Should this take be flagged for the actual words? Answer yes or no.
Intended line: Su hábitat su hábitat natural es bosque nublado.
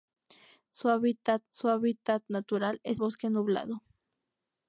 no